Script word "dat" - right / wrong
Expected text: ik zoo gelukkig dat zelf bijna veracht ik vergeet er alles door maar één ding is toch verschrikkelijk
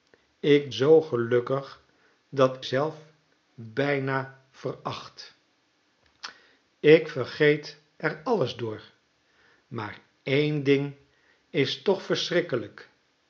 right